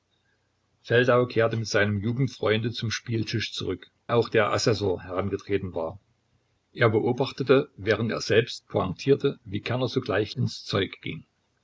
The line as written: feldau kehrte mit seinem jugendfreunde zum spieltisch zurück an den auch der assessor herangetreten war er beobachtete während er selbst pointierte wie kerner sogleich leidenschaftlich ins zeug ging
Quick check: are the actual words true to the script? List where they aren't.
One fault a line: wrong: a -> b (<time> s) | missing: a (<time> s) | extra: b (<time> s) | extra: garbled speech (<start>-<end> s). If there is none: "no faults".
missing: an den (3.9 s)
missing: leidenschaftlich (10.3 s)